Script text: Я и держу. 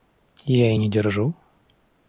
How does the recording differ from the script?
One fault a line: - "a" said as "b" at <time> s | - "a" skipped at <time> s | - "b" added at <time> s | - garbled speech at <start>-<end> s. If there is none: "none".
- "не" added at 0.7 s